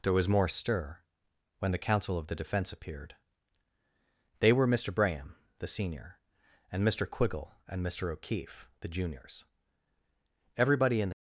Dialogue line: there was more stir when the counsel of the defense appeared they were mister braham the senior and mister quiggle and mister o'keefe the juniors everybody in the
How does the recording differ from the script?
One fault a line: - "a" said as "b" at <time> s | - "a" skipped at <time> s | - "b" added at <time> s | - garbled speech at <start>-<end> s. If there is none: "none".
none